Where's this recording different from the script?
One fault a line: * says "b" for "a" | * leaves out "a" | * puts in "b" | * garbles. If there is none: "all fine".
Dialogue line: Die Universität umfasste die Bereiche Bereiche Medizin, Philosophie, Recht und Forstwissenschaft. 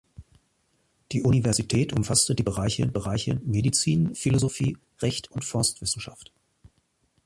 all fine